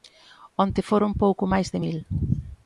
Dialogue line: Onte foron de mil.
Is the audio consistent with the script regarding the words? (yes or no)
no